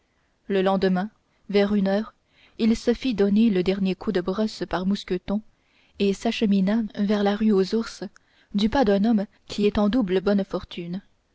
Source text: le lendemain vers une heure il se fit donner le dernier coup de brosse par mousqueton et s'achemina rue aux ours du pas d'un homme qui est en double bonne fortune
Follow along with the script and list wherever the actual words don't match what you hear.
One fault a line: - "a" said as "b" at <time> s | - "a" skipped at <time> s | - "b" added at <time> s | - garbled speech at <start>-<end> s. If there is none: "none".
- "vers la" added at 6.9 s